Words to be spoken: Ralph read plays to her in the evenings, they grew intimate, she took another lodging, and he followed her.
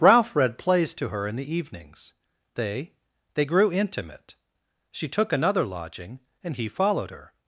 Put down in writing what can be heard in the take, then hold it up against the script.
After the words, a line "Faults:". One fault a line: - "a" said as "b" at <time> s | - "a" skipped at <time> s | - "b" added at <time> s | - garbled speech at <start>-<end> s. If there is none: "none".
Ralph read plays to her in the evenings, they they grew intimate, she took another lodging, and he followed her.
Faults:
- "they" added at 3.4 s